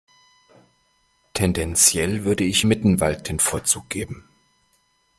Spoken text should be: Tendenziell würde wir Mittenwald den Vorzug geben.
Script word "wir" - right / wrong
wrong